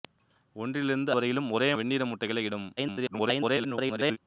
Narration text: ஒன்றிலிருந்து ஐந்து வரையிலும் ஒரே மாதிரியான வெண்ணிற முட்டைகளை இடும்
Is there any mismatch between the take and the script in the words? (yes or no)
yes